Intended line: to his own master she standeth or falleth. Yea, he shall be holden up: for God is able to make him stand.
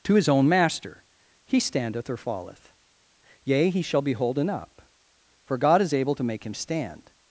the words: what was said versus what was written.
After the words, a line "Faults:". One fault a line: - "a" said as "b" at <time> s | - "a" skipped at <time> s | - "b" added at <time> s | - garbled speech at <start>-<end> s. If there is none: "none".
to his own master he standeth or falleth. Yea, he shall be holden up: for God is able to make him stand.
Faults:
- "she" said as "he" at 1.4 s